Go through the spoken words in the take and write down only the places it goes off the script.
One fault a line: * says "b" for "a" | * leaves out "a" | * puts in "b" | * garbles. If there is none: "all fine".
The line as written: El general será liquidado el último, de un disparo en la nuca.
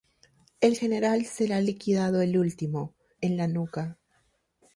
* leaves out "de un disparo"